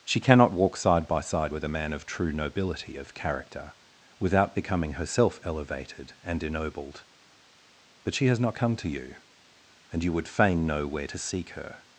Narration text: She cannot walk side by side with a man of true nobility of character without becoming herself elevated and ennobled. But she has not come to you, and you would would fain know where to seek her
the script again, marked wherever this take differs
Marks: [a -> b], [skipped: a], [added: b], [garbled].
She cannot walk side by side with a man of true nobility of character without becoming herself elevated and ennobled. But she has not come to you, and you would [skipped: would] fain know where to seek her